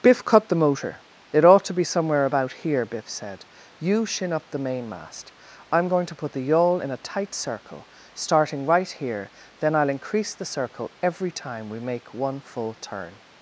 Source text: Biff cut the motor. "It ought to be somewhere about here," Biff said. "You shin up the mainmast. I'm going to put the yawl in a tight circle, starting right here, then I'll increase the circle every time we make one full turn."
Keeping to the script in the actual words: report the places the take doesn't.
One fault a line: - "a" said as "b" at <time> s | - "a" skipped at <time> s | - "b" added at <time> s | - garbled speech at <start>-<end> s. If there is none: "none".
none